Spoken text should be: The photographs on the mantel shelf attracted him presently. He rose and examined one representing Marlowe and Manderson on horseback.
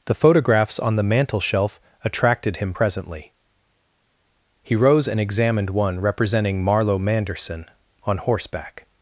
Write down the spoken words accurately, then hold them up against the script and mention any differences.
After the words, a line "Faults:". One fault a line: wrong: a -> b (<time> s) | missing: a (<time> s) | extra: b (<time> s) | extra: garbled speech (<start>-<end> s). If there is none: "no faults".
The photographs on the mantel shelf attracted him presently. He rose and examined one representing Marlowe Manderson on horseback.
Faults:
missing: and (7.0 s)